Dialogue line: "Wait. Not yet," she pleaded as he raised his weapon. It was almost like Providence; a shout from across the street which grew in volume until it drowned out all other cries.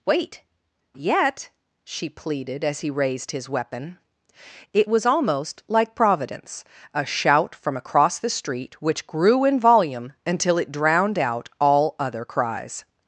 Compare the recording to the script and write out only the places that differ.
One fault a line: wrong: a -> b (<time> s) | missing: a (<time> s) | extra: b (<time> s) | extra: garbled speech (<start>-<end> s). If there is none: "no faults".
missing: Not (0.4 s)